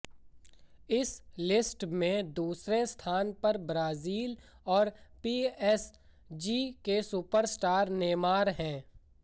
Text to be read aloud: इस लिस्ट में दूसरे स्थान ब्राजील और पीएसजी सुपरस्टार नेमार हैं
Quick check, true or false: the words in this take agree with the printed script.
false